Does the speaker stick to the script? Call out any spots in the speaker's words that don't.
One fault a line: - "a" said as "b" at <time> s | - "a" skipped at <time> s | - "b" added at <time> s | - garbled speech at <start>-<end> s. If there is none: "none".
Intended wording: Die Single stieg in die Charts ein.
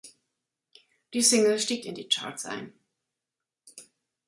none